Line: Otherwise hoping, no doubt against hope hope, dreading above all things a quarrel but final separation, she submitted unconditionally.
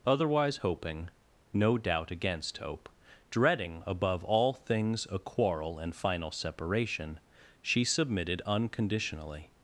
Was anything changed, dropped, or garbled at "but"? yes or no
yes